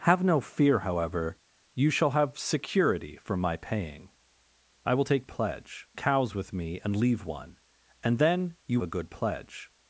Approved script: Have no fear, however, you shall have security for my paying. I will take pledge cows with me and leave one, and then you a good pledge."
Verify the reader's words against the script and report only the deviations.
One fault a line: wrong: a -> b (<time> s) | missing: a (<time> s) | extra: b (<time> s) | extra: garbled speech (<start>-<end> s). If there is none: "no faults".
no faults